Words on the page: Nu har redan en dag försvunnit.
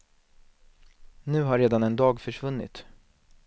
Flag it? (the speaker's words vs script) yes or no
no